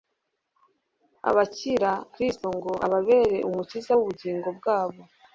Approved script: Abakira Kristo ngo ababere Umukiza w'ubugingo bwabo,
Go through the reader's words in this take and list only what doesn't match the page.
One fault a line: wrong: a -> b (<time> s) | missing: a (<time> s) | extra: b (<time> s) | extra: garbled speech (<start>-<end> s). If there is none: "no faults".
no faults